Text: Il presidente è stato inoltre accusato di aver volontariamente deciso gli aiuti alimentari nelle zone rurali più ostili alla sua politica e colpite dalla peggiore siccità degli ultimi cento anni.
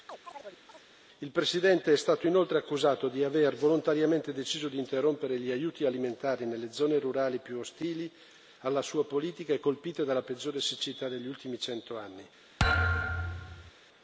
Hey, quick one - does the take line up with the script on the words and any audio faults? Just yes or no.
no